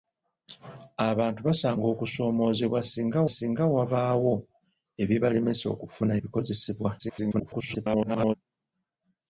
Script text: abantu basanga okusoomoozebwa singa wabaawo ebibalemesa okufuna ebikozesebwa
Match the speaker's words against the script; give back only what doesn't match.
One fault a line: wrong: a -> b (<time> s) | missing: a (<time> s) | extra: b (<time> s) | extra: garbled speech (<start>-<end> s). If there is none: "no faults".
extra: singa (3.4 s)
extra: garbled speech (7.0-8.3 s)